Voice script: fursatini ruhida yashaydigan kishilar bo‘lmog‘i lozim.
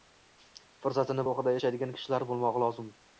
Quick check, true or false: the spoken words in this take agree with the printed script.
true